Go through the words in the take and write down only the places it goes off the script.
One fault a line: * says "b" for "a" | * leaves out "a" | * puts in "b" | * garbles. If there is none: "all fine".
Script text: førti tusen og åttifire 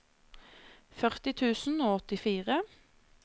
all fine